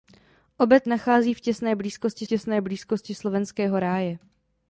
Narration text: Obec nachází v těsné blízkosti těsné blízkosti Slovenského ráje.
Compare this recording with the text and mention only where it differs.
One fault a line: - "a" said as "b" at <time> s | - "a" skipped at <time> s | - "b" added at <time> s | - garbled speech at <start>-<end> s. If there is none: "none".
none